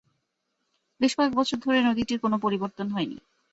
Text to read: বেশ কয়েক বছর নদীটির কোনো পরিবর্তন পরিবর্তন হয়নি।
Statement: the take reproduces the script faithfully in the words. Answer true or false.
false